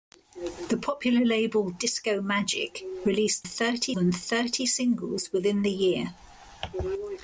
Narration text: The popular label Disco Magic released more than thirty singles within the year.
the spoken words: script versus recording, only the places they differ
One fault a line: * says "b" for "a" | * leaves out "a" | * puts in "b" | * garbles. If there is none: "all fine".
* says "thirty" for "more"